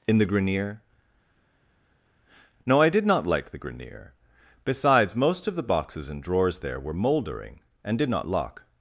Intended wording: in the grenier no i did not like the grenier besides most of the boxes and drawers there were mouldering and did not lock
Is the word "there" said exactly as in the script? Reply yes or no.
yes